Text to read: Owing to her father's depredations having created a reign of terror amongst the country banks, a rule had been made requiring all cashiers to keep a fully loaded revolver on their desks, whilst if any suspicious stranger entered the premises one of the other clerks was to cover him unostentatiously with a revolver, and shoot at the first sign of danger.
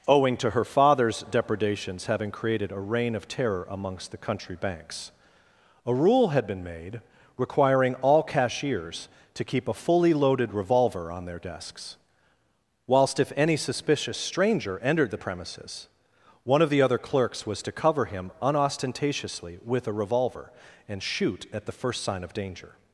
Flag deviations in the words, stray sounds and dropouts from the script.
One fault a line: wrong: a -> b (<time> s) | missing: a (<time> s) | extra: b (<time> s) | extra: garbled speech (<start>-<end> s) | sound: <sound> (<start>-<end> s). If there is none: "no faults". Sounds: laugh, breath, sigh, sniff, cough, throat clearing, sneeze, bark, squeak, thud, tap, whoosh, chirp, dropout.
no faults